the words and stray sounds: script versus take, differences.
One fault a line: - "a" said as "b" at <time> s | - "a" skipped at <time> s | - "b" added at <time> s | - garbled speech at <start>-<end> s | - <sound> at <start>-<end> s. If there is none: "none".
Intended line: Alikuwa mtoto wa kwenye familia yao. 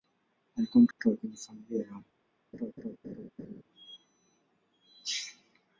- dropout at 0.9-1.0 s
- laugh at 2.5-3.6 s